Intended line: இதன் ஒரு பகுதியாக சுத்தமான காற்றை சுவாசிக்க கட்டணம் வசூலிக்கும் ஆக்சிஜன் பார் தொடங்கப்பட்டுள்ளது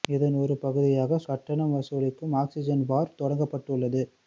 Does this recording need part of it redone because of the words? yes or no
yes